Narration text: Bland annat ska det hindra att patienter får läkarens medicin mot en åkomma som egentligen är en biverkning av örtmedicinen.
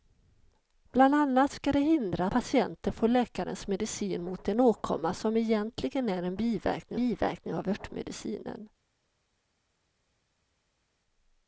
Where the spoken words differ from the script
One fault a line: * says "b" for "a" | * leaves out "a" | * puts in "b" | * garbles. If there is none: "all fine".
* leaves out "att"
* puts in "biverkning"